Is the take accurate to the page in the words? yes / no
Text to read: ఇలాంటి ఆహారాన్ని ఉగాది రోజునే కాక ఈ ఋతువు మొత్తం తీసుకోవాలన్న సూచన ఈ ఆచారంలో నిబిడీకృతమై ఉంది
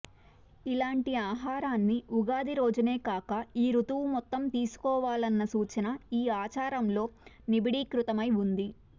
yes